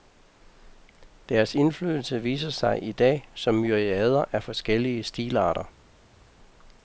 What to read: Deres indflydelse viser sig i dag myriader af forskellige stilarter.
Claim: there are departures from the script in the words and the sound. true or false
true